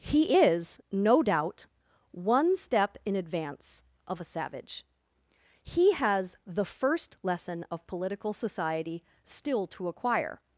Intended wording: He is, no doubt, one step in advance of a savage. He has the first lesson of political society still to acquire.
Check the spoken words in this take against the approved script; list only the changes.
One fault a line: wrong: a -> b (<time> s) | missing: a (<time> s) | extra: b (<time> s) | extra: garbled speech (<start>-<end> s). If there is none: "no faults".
no faults